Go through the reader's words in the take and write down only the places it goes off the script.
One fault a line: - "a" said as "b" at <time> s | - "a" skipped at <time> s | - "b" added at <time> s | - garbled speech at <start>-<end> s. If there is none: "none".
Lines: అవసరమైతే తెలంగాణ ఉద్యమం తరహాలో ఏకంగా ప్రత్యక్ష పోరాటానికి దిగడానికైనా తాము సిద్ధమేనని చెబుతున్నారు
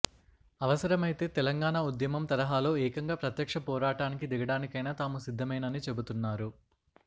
none